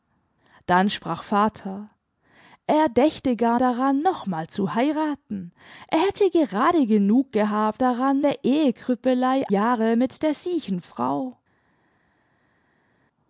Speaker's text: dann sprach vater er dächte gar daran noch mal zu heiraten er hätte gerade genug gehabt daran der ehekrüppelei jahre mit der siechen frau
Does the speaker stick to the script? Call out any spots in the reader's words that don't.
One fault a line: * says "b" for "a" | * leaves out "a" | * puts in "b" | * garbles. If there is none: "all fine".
all fine